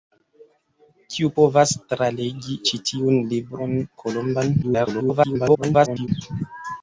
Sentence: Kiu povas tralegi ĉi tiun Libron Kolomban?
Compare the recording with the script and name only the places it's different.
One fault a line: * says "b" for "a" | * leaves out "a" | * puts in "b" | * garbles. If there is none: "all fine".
* garbles